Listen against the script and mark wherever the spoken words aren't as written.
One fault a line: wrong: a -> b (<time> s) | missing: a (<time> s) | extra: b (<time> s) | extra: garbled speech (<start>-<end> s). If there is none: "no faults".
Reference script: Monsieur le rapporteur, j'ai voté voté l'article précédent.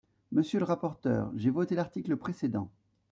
missing: voté (1.8 s)